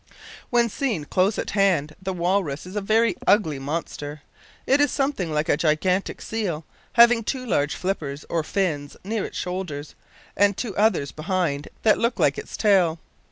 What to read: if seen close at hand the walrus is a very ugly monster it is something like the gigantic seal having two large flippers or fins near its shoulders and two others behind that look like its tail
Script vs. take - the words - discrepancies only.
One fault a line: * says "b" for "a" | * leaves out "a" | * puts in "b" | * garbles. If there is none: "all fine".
* says "when" for "if"
* says "a" for "the"